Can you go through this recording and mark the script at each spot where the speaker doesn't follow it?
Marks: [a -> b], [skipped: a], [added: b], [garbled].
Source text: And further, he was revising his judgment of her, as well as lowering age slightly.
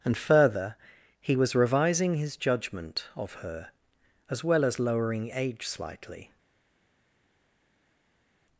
And further, he was revising his judgment of her, as well as lowering age slightly.